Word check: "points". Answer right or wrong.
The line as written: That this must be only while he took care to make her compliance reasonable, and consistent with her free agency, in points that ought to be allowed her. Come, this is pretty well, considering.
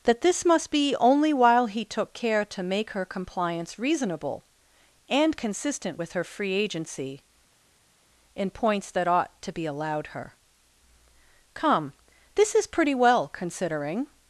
right